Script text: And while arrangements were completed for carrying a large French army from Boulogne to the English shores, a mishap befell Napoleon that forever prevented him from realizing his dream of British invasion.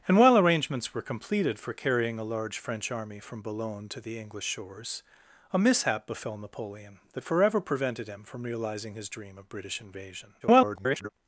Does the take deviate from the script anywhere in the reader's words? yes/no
yes